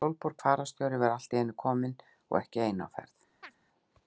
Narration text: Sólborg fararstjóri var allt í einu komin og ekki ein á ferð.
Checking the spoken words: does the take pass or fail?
pass